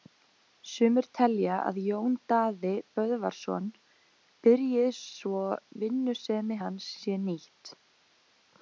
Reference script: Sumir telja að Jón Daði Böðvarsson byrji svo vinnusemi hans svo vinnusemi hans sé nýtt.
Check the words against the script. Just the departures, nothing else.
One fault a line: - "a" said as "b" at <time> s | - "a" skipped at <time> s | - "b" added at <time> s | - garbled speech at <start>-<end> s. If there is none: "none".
- "svo vinnusemi hans" skipped at 6.9 s